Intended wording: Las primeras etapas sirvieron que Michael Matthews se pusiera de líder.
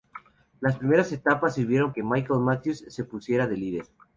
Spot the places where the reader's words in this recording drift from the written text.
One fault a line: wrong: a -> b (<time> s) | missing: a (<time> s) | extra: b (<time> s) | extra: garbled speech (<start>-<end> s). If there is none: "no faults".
no faults